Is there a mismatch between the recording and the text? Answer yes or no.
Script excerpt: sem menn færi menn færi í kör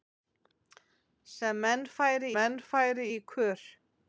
no